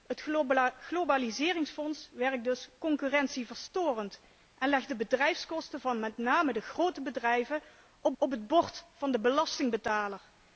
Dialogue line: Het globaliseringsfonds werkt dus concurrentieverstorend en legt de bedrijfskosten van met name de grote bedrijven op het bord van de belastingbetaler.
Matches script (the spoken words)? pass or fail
fail